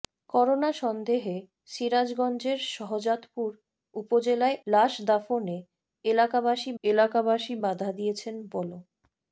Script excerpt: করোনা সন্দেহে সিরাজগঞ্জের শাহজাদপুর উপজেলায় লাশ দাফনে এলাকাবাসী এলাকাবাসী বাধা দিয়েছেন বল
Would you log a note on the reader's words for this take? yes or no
no